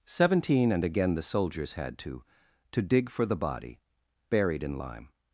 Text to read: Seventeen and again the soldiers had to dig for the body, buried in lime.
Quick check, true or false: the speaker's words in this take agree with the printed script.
false